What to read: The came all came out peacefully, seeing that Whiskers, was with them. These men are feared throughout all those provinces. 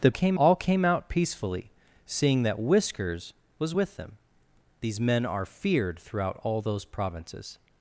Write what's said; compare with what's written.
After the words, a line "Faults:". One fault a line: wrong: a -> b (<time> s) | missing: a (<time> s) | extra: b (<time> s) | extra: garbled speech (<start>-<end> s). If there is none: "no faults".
The came all came out peacefully, seeing that Whiskers, was with them. These men are feared throughout all those provinces.
Faults:
no faults